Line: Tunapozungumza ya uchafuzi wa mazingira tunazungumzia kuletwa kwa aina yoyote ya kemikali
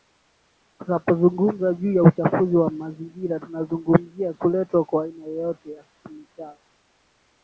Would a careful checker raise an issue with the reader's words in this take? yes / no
yes